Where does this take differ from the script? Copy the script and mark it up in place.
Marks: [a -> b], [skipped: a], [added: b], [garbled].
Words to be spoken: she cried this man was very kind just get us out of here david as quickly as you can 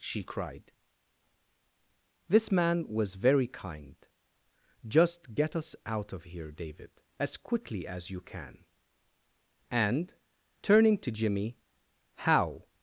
she cried this man was very kind just get us out of here david as quickly as you can [added: and turning to jimmy how]